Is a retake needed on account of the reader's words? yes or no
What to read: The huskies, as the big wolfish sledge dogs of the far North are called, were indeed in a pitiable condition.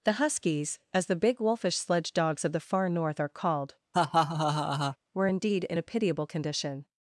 no